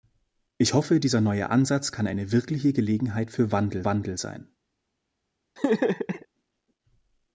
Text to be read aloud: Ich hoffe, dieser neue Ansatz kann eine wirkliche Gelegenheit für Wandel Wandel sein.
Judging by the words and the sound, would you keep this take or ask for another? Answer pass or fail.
fail